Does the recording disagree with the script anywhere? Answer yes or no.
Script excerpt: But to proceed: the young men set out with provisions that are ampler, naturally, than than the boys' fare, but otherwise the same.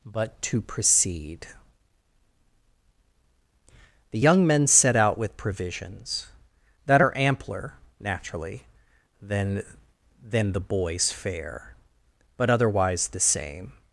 no